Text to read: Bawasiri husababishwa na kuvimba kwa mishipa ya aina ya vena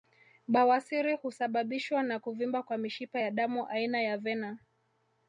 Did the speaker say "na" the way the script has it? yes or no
yes